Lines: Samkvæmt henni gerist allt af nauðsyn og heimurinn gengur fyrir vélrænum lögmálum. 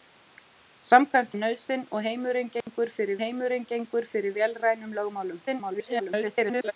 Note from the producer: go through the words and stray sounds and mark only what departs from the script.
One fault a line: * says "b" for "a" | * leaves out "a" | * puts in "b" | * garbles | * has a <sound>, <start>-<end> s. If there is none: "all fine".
* says "af nauðsyn og heimurinn gengur fyrir" for "henni gerist allt af nauðsyn og"
* has a dropout, 2.6-2.7 s
* garbles